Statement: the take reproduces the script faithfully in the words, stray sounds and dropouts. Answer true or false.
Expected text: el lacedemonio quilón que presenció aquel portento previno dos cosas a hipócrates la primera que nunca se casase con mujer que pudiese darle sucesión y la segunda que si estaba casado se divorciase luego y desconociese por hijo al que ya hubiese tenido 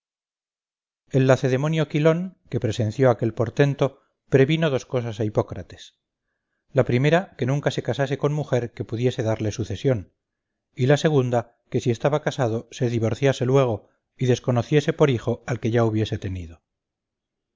true